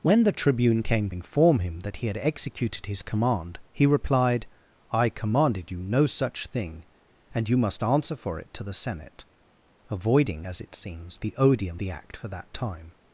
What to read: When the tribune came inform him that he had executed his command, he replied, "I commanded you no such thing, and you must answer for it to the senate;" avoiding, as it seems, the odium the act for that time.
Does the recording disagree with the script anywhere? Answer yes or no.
no